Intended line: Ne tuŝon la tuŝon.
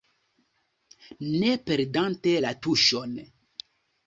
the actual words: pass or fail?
fail